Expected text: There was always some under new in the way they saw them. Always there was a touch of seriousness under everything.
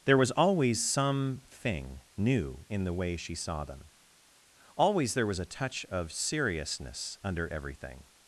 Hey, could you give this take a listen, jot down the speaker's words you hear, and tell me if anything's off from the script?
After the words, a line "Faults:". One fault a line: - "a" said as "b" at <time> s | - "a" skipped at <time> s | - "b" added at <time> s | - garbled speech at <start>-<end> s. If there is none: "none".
There was always some thing new in the way she saw them. Always there was a touch of seriousness under everything.
Faults:
- "under" said as "thing" at 1.5 s
- "they" said as "she" at 3.2 s